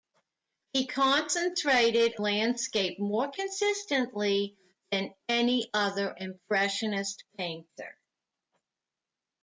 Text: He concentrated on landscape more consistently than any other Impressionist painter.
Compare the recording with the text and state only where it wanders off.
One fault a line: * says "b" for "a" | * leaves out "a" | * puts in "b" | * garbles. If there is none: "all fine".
* leaves out "on"